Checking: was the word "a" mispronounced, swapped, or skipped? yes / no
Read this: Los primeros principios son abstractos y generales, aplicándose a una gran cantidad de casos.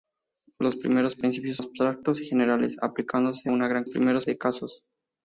yes